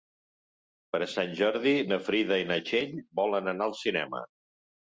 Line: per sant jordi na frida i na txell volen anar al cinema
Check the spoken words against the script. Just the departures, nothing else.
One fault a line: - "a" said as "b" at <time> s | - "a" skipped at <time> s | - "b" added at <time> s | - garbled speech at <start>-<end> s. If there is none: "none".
none